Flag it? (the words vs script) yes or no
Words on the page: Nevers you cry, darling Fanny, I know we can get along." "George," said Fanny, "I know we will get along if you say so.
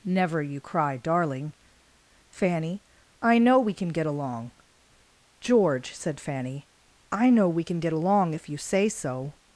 yes